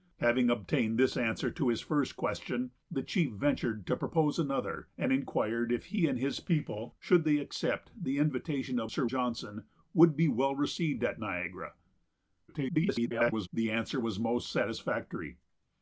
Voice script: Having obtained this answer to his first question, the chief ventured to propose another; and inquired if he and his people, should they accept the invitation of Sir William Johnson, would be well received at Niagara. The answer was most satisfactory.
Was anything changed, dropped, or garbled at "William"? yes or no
yes